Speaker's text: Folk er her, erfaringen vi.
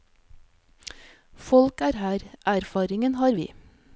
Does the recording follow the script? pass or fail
fail